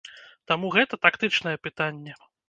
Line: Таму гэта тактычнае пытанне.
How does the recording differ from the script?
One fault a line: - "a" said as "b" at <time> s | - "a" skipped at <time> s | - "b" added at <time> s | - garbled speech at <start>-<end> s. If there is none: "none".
none